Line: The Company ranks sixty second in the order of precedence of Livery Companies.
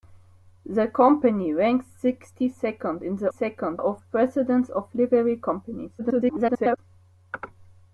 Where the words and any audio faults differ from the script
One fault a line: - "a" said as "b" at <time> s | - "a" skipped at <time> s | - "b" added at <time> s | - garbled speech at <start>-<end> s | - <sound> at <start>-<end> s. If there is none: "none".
- "order" said as "second" at 3.3 s
- garbled speech at 6.0-6.8 s